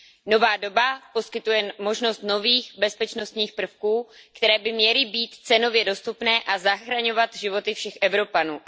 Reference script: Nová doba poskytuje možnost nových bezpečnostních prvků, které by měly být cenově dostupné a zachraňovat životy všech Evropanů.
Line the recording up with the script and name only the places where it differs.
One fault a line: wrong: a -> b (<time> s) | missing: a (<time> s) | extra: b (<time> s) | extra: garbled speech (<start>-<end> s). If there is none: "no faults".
no faults